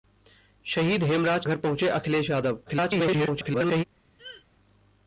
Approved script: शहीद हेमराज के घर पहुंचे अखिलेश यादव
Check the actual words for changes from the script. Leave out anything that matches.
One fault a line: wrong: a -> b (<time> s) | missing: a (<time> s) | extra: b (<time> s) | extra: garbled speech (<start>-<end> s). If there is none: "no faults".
missing: के (1.4 s)
extra: garbled speech (2.7-3.8 s)